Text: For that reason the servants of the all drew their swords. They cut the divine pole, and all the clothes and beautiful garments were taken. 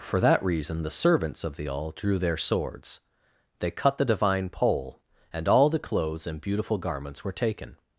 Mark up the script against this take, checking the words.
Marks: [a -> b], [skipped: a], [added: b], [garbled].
For that reason the servants of the all drew their swords. They cut the divine pole, and all the clothes and beautiful garments were taken.